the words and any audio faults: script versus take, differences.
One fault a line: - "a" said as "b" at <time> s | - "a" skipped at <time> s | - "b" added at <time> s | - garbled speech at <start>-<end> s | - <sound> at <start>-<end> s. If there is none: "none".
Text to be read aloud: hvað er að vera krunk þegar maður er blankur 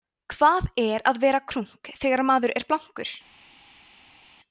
none